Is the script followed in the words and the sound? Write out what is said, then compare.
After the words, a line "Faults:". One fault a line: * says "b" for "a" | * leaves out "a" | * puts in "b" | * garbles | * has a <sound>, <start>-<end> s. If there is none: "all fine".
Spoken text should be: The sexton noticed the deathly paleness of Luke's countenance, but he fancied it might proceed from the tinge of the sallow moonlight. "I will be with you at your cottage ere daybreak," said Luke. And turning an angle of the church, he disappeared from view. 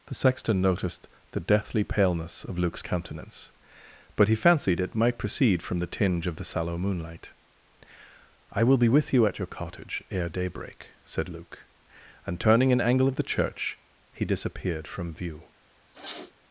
The sexton noticed the deathly paleness of Luke's countenance, but he fancied it might proceed from the tinge of the sallow moonlight. "I will be with you at your cottage ere daybreak," said Luke. And turning an angle of the church, he disappeared from view.
Faults:
* has a sniff, 15.9-16.3 s